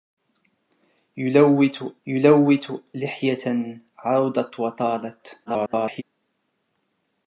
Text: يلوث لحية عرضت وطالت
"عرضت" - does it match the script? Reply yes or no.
yes